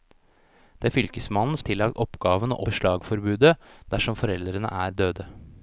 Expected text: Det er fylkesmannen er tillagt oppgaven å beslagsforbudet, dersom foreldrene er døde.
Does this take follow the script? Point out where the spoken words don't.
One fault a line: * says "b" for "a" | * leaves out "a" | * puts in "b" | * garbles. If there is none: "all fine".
all fine